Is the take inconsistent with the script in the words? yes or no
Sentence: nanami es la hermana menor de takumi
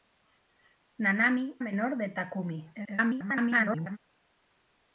yes